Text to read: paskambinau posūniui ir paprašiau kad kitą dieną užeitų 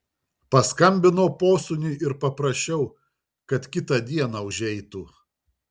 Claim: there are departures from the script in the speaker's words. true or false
false